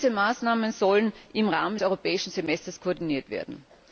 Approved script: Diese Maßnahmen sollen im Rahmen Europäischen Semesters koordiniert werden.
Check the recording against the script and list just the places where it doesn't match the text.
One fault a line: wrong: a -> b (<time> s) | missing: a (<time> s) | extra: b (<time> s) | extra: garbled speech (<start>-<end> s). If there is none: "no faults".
no faults